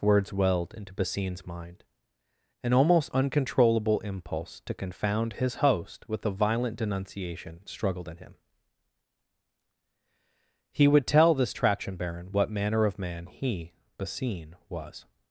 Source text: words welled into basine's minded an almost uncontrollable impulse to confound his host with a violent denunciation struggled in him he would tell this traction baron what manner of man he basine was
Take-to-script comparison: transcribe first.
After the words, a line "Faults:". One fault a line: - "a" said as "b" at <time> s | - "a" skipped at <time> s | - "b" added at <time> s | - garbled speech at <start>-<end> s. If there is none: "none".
words welled into basine's mind an almost uncontrollable impulse to confound his host with a violent denunciation struggled in him he would tell this traction baron what manner of man he basine was
Faults:
- "minded" said as "mind" at 1.4 s